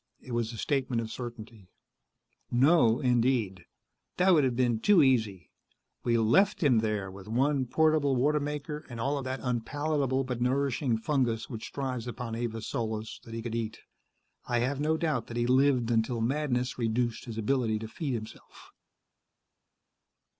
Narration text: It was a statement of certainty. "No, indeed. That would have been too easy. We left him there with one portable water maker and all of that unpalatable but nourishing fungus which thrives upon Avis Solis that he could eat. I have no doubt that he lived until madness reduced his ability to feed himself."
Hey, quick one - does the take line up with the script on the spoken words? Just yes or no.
yes